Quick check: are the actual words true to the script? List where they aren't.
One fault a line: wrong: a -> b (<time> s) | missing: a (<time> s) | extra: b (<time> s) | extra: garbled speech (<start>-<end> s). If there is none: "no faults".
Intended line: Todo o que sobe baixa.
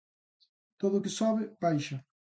no faults